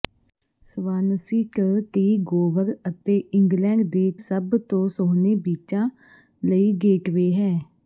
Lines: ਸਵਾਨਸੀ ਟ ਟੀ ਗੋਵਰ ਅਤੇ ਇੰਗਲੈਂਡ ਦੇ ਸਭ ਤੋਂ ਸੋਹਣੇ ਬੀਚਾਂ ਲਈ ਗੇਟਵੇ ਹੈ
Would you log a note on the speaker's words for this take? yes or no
no